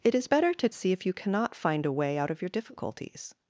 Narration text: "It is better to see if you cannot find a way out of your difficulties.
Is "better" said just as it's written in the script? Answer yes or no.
yes